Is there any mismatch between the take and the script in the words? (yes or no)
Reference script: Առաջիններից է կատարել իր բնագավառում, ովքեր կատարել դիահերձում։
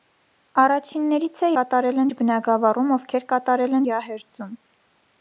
no